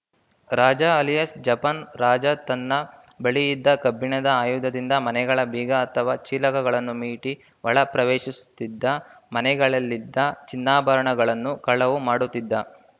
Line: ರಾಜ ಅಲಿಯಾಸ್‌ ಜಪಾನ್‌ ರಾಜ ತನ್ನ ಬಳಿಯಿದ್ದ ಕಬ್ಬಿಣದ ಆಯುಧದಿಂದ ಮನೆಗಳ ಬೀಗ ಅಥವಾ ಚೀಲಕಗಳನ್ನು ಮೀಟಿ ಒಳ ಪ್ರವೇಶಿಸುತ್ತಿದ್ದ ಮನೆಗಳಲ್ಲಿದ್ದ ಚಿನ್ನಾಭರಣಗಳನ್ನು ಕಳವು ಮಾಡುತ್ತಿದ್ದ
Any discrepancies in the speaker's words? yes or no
no